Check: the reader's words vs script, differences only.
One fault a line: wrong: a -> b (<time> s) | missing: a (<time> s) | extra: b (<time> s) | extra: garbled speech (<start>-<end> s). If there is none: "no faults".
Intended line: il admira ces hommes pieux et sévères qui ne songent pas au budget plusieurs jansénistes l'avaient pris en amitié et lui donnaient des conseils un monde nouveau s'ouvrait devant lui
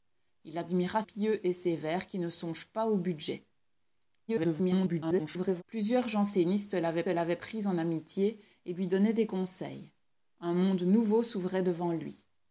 missing: ces hommes (1.0 s)
extra: garbled speech (4.3-5.6 s)
extra: l'avaient (7.1 s)